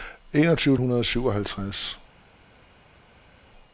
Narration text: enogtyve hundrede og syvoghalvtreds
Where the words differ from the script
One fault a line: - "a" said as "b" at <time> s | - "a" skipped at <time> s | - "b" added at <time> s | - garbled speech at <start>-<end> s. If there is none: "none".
none